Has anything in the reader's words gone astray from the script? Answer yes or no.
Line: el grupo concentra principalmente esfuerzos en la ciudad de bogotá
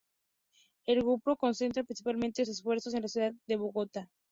no